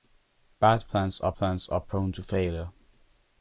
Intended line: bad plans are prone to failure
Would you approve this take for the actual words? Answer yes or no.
no